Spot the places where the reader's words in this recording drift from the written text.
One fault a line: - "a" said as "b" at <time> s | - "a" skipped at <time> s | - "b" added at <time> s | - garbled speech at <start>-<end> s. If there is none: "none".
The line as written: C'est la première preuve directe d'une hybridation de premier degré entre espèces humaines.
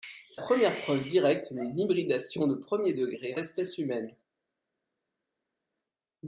- "la" skipped at 0.4 s
- "entre" skipped at 3.3 s